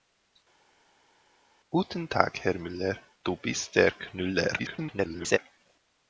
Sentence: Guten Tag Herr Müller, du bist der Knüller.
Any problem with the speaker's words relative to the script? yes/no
yes